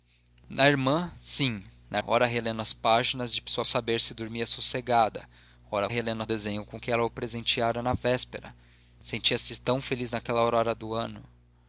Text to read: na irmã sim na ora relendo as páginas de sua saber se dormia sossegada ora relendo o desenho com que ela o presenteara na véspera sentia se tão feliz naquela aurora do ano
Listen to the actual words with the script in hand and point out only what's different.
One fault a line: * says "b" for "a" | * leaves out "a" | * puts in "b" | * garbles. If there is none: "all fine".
all fine